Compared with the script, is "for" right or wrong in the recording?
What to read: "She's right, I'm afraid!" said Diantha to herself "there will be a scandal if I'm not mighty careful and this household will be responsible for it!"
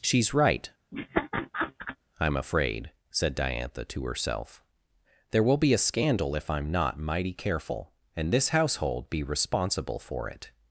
right